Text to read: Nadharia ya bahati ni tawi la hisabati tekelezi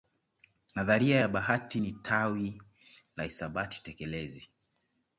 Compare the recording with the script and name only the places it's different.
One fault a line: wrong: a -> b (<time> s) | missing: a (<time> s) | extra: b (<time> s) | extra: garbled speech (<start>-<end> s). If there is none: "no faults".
no faults